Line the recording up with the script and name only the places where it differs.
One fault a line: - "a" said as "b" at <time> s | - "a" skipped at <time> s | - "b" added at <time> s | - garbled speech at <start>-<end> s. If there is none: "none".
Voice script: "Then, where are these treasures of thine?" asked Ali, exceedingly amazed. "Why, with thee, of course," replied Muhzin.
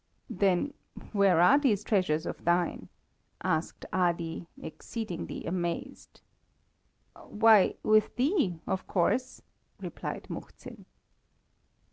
none